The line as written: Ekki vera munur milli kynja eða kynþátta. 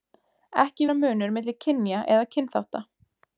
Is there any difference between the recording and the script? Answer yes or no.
no